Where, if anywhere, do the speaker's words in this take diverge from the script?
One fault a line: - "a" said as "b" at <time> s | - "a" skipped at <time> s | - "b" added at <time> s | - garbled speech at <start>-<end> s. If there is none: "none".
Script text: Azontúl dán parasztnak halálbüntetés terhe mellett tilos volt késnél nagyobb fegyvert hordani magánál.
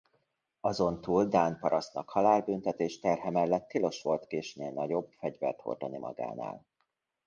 none